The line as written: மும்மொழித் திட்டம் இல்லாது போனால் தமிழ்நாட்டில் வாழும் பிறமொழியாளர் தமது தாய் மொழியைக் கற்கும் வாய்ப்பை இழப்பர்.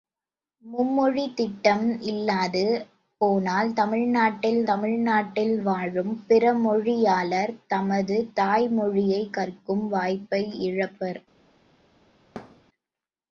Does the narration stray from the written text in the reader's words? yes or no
yes